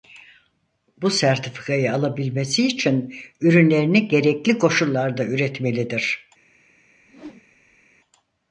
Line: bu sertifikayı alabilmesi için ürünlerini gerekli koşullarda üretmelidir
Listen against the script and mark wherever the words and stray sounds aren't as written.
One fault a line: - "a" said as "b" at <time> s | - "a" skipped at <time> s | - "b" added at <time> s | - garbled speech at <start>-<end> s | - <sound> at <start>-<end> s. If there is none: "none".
- whoosh at 7.0-7.9 s